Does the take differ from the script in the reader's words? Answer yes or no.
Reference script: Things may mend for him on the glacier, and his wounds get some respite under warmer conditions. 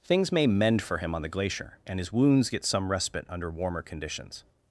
no